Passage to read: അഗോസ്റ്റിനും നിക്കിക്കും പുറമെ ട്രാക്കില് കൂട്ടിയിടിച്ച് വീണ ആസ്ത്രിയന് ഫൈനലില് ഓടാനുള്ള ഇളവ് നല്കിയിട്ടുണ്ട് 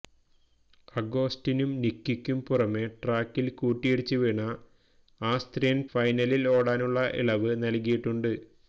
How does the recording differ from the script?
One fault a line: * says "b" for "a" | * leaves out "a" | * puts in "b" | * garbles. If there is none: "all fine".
all fine